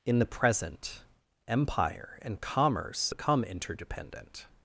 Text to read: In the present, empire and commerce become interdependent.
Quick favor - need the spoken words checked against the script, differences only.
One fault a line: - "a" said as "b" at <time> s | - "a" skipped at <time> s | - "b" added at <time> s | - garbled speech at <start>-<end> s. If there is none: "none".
none